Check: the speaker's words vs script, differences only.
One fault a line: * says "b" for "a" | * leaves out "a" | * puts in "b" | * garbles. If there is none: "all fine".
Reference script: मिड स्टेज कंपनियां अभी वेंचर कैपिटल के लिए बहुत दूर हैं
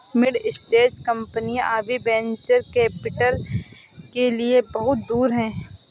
all fine